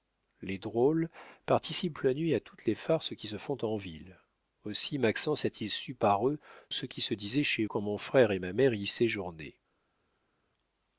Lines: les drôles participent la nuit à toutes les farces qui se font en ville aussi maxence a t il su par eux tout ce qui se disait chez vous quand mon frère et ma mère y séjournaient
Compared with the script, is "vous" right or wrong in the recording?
wrong